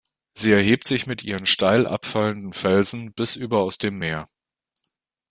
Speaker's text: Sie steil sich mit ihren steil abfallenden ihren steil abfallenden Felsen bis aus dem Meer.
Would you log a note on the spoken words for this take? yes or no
yes